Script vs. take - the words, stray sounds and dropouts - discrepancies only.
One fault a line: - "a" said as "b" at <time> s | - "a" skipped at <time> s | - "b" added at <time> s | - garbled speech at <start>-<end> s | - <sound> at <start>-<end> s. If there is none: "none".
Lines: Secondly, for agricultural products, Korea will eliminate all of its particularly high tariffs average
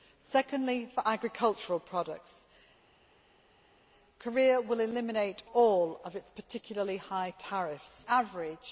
none